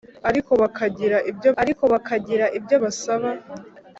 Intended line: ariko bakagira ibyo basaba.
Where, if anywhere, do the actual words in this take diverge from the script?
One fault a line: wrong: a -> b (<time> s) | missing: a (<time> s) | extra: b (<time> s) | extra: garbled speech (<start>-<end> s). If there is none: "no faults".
extra: ariko bakagira ibyo (1.6 s)